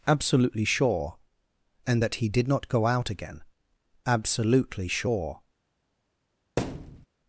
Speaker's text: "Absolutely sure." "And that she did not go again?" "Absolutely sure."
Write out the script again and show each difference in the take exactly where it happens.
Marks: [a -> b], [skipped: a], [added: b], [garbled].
"Absolutely sure." "And that [she -> he] did not go [added: out] again?" "Absolutely sure."